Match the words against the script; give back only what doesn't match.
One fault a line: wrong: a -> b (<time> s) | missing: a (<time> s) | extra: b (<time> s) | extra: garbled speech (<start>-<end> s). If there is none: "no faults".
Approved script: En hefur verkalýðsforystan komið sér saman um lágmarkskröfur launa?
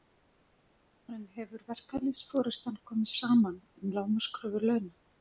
missing: sér (3.1 s)